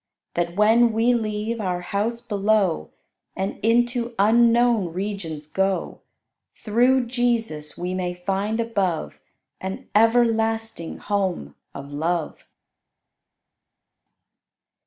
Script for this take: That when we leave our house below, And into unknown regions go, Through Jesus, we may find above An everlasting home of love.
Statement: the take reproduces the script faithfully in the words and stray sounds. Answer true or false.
true